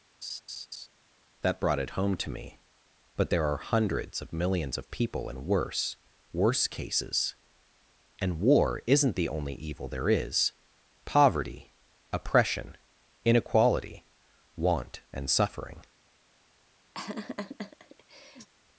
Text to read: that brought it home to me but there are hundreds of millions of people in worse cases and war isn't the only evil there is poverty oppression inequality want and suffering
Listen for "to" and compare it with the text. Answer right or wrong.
right